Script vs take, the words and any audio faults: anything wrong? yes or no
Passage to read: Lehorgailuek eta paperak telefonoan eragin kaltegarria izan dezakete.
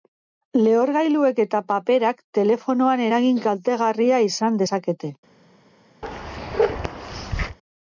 yes